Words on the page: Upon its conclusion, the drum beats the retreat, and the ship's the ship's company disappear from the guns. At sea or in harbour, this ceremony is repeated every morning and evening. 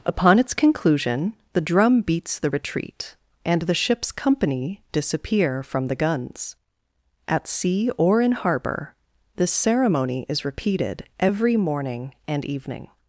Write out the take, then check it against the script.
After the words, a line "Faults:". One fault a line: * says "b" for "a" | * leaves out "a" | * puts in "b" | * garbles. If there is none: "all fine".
Upon its conclusion, the drum beats the retreat, and the ship's company disappear from the guns. At sea or in harbour, this ceremony is repeated every morning and evening.
Faults:
* leaves out "the ship's"